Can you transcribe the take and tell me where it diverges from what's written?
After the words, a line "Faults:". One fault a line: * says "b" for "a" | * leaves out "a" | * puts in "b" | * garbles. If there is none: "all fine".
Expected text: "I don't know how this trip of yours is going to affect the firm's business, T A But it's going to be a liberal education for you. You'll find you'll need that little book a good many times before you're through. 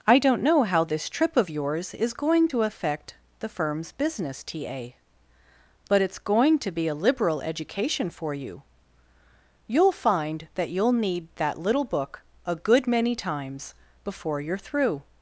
"I don't know how this trip of yours is going to affect the firm's business, T A But it's going to be a liberal education for you. You'll find that you'll need that little book a good many times before you're through.
Faults:
* puts in "that"